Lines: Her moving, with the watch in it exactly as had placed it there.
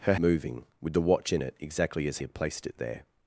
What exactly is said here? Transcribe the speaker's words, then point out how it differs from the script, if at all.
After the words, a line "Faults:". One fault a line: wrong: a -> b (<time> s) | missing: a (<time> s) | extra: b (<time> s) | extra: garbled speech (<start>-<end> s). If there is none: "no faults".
Her moving, with the watch in it exactly as had placed it there.
Faults:
no faults